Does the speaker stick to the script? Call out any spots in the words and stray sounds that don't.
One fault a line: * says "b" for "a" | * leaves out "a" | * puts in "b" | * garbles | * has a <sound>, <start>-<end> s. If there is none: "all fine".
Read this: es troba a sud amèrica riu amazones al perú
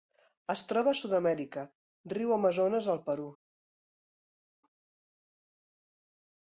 all fine